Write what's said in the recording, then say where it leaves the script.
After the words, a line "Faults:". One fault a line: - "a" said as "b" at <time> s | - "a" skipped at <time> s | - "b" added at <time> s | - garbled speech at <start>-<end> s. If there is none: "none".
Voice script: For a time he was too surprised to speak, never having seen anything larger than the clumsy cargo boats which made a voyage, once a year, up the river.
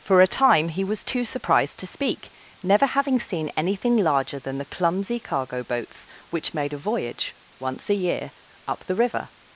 For a time he was too surprised to speak, never having seen anything larger than the clumsy cargo boats which made a voyage, once a year, up the river.
Faults:
none